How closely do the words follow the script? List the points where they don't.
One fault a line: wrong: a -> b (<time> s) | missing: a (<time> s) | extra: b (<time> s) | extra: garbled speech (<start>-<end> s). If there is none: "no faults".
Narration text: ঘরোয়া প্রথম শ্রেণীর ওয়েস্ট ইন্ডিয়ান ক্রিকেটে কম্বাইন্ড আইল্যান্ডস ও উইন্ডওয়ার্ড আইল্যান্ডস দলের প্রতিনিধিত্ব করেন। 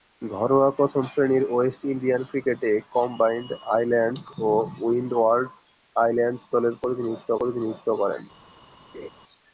extra: প্রতিনিধিত্ব (7.4 s)